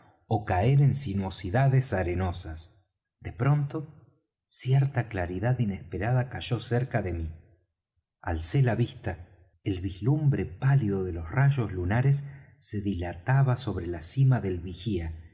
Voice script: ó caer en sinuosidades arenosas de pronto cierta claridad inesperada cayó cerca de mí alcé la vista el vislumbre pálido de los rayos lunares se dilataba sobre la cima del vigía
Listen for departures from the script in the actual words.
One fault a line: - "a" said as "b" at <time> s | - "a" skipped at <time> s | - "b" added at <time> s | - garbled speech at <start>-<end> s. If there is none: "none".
none